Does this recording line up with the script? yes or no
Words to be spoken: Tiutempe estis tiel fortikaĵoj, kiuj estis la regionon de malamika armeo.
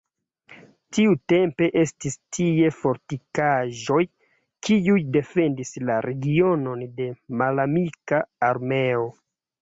no